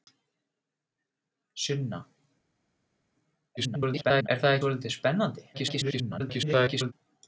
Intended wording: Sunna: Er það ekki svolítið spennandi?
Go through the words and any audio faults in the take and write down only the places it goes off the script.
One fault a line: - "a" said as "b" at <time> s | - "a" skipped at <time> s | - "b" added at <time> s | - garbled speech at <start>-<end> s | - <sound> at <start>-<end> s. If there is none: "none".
- garbled speech at 3.6-4.3 s
- "ekki" skipped at 4.6 s
- garbled speech at 5.5-6.9 s